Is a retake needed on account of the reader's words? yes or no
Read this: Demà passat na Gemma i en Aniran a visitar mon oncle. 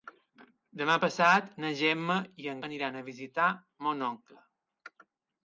no